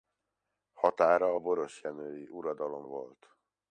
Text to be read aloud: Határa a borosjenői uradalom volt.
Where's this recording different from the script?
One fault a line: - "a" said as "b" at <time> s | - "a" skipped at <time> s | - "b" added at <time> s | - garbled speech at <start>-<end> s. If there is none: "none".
none